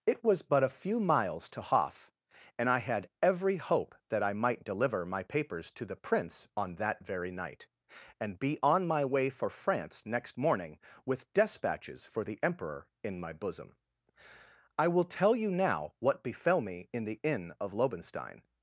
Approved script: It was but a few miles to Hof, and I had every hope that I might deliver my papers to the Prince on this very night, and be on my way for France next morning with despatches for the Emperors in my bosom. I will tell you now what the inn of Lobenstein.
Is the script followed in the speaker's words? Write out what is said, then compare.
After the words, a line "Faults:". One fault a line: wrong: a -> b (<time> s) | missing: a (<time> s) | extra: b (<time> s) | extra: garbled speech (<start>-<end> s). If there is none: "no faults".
It was but a few miles to Hof, and I had every hope that I might deliver my papers to the Prince on that very night, and be on my way for France next morning with despatches for the Emperor in my bosom. I will tell you now what befell me in the inn of Lobenstein.
Faults:
wrong: this -> that (6.8 s)
wrong: Emperors -> Emperor (12.4 s)
extra: befell me in (16.2 s)